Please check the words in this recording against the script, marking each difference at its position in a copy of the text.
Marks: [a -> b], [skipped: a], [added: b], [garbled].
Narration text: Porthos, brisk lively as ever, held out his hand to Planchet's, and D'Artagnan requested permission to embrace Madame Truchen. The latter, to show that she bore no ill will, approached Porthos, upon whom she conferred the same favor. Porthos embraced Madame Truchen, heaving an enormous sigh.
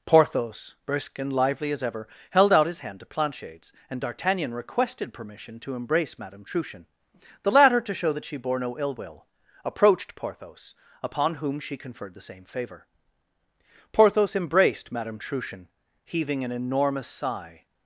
Porthos, brisk [added: and] lively as ever, held out his hand to Planchet's, and D'Artagnan requested permission to embrace Madame Truchen. The latter, to show that she bore no ill will, approached Porthos, upon whom she conferred the same favor. Porthos embraced Madame Truchen, heaving an enormous sigh.